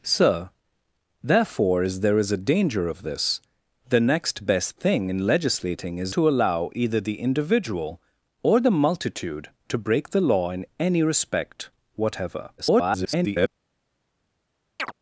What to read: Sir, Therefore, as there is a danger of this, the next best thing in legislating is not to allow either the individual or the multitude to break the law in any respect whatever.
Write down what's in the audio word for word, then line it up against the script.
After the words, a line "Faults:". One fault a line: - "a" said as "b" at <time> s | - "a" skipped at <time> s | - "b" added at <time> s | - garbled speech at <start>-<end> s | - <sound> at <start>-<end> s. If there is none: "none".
Sir, Therefore, as there is a danger of this, the next best thing in legislating is to allow either the individual or the multitude to break the law in any respect whatever. [garbled]
Faults:
- "not" skipped at 6.2 s
- garbled speech at 12.6-13.5 s
- chirp at 14.8-14.9 s